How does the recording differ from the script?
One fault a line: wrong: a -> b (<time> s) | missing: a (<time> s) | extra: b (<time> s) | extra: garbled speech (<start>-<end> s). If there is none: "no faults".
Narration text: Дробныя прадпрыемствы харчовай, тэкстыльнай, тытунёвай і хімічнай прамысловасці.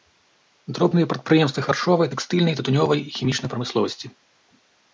no faults